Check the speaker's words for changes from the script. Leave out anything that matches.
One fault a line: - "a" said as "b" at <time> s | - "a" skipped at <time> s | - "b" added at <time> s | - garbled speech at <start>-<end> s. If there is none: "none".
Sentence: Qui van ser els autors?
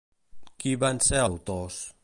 - "els" skipped at 1.2 s